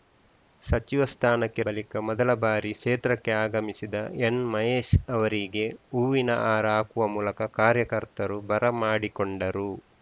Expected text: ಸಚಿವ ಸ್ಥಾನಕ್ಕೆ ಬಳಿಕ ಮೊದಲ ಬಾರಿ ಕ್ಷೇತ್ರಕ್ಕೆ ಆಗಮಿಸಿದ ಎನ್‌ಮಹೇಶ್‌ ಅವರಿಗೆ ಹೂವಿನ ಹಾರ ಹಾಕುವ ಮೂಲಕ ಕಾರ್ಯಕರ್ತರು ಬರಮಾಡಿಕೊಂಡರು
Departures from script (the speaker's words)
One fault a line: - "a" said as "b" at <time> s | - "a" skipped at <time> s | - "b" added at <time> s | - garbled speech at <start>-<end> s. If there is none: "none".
none